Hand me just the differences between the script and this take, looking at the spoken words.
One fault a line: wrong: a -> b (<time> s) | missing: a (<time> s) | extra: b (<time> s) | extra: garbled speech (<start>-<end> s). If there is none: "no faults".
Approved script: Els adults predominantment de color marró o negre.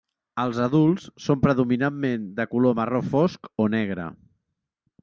extra: són (1.2 s)
extra: fosc (3.1 s)